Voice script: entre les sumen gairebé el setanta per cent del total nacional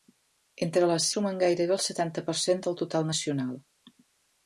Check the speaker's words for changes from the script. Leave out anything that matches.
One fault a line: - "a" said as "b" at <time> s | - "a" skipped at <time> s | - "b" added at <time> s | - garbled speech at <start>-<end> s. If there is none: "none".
none